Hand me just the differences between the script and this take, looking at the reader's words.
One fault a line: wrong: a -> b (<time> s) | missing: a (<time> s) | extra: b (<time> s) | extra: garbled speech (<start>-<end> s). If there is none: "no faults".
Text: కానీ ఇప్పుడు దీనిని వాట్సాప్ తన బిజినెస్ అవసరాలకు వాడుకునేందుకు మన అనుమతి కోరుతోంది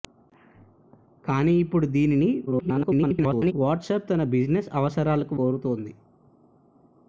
extra: garbled speech (2.5-3.5 s)
missing: వాడుకునేందుకు మన అనుమతి (5.4 s)